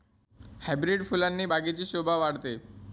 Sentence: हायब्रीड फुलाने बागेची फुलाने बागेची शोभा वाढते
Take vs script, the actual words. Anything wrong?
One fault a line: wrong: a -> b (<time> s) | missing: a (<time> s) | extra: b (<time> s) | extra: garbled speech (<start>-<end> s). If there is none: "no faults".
missing: फुलाने बागेची (1.8 s)